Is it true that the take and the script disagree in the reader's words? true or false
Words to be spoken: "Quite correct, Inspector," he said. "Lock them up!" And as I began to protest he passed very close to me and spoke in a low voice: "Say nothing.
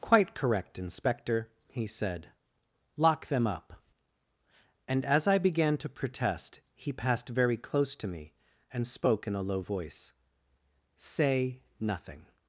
false